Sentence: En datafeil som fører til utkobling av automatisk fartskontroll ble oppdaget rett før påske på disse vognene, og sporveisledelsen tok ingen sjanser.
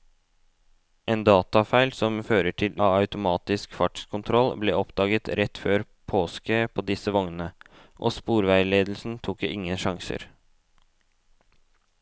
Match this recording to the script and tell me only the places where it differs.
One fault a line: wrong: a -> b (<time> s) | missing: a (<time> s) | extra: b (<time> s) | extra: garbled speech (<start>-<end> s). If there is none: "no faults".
missing: utkobling (2.8 s)